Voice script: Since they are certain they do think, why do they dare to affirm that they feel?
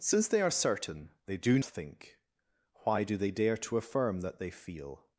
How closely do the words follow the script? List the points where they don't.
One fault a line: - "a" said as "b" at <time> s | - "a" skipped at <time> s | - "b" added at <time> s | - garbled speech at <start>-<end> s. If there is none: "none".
none